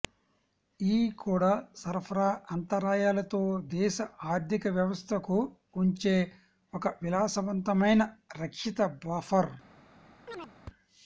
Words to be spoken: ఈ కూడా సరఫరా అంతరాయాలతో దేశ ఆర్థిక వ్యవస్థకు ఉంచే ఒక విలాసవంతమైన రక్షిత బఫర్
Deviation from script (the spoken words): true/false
false